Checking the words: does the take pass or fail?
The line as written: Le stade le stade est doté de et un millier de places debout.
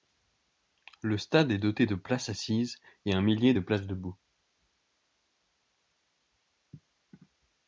fail